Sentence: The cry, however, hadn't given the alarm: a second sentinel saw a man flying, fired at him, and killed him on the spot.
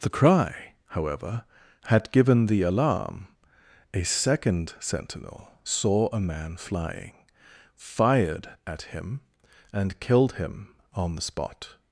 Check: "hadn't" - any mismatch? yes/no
yes